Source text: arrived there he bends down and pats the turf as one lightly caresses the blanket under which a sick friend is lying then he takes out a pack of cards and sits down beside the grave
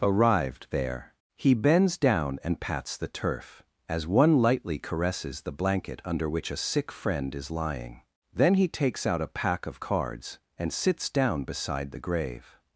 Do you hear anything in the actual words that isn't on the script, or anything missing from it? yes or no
no